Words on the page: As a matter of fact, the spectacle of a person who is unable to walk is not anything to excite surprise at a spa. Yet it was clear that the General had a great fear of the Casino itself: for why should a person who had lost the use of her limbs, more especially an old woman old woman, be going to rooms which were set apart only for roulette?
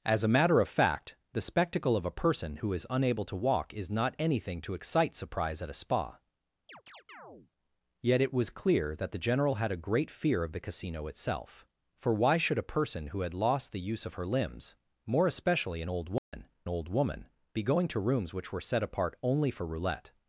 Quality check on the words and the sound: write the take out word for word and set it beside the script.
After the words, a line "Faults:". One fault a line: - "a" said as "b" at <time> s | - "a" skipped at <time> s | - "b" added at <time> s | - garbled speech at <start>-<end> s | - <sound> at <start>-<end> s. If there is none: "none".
As a matter of fact, the spectacle of a person who is unable to walk is not anything to excite surprise at a spa. Yet it was clear that the General had a great fear of the Casino itself: for why should a person who had lost the use of her limbs, more especially an old woman old woman, be going to rooms which were set apart only for roulette?
Faults:
- chirp at 6.7-7.5 s
- dropout at 16.2-16.3 s